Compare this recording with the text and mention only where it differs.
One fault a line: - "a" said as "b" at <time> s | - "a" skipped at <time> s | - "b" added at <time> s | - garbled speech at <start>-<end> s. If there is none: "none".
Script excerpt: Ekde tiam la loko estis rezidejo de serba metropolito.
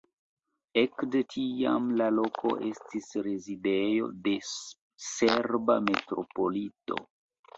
none